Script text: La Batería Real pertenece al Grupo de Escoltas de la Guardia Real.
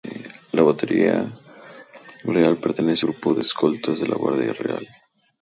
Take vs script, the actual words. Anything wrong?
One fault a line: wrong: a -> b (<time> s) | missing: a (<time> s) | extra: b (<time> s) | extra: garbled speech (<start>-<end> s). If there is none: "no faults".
missing: al (3.0 s)